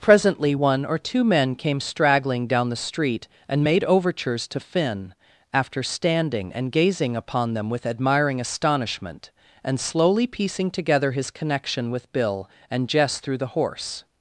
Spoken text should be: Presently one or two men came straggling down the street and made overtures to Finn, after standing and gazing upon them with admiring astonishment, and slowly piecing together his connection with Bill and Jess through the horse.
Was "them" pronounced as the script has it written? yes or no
yes